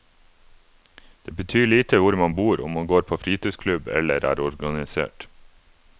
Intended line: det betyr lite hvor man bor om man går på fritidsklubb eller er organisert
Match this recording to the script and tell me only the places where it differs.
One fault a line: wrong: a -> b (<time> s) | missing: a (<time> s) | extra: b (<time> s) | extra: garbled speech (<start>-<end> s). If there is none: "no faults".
no faults